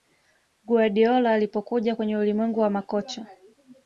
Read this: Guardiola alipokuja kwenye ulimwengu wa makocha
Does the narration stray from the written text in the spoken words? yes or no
no